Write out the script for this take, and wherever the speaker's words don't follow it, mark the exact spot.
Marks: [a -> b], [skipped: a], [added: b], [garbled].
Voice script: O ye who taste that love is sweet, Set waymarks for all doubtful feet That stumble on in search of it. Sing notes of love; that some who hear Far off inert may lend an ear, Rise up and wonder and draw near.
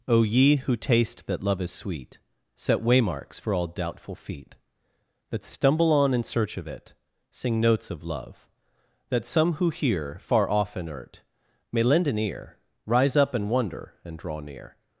O ye who taste that love is sweet, Set waymarks for all doubtful feet That stumble on in search of it. Sing notes of love; that some who hear Far off inert may lend an ear, Rise up and wonder and draw near.